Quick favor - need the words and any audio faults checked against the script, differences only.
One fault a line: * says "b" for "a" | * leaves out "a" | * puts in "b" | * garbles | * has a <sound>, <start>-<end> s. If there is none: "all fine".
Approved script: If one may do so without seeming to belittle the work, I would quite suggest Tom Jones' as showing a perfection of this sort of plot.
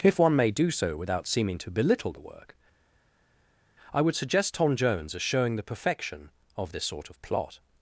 * leaves out "quite"
* says "the" for "a"